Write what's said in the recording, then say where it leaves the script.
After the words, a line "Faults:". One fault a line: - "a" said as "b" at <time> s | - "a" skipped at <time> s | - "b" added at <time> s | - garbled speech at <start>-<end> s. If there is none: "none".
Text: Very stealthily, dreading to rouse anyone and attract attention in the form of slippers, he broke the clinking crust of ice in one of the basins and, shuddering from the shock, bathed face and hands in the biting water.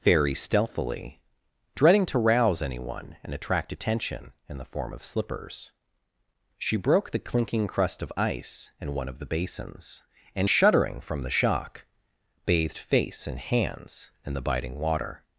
Very stealthily, dreading to rouse anyone and attract attention in the form of slippers, she broke the clinking crust of ice in one of the basins and, shuddering from the shock, bathed face and hands in the biting water.
Faults:
- "he" said as "she" at 6.6 s